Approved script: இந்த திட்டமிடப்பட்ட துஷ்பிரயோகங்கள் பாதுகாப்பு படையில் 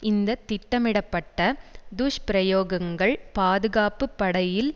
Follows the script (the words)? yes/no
yes